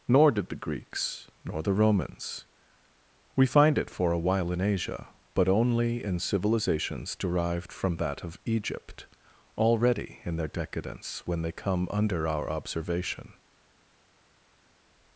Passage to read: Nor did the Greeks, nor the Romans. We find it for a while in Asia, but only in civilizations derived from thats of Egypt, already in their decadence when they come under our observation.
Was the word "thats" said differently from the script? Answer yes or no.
yes